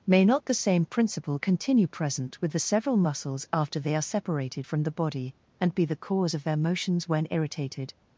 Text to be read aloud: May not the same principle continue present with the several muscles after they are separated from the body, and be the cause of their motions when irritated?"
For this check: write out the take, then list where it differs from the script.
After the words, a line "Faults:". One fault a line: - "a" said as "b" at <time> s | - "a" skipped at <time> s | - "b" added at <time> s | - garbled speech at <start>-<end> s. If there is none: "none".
May not the same principle continue present with the several muscles after they are separated from the body, and be the cause of their motions when irritated?"
Faults:
none